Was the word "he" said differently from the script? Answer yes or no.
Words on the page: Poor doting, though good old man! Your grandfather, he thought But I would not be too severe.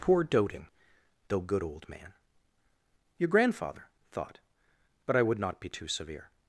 yes